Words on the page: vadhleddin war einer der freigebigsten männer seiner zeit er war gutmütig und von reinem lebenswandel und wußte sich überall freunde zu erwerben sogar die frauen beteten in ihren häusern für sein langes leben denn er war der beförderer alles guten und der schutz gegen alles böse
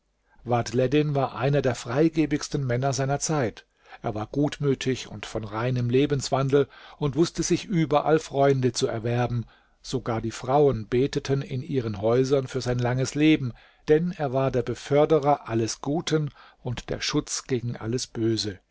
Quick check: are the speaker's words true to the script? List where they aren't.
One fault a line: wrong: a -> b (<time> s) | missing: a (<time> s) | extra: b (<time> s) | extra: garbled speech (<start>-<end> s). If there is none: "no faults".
no faults